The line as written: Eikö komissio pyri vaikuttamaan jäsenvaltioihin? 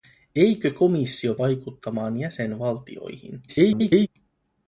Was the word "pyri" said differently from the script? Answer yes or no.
yes